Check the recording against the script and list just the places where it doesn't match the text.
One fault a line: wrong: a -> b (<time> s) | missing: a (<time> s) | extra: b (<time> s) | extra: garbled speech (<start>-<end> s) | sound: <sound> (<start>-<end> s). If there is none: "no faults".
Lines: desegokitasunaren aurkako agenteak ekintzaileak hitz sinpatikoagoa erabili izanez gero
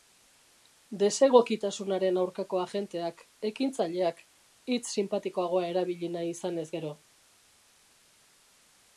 extra: nahi (6.2 s)